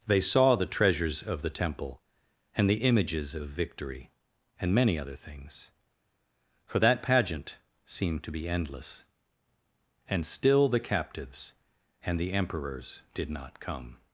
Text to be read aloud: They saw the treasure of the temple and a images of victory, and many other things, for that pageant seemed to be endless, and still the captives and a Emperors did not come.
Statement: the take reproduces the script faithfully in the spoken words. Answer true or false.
false